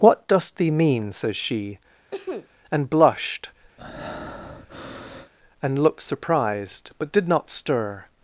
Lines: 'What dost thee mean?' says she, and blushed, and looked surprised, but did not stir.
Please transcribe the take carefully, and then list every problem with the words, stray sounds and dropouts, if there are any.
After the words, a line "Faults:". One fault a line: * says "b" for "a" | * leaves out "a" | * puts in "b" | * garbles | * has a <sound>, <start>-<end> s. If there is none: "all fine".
'What dost thee mean?' says she, and blushed, and looked surprised, but did not stir.
Faults:
* has a sneeze, 2.1-2.5 s
* has a breath, 3.8-5.3 s